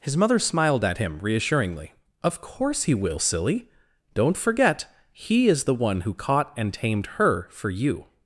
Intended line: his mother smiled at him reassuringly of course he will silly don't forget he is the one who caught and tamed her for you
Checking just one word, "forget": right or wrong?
right